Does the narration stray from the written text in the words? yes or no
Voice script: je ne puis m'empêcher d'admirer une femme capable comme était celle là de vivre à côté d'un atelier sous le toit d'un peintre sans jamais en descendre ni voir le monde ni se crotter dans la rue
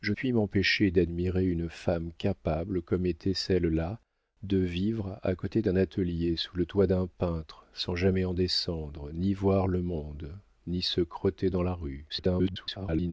yes